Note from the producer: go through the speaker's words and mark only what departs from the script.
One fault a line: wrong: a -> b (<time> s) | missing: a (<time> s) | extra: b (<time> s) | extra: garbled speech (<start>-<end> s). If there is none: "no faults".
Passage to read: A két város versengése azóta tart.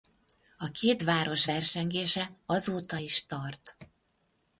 extra: is (2.9 s)